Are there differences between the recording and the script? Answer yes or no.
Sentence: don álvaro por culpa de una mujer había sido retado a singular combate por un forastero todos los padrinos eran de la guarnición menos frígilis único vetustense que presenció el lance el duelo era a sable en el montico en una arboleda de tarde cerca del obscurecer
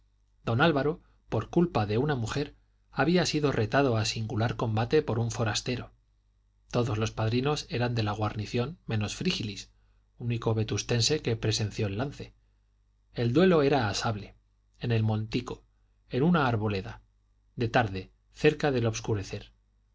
no